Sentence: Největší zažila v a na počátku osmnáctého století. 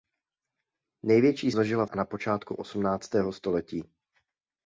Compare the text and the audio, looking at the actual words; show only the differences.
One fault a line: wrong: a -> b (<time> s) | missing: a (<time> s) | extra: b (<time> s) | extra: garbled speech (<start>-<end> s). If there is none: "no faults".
no faults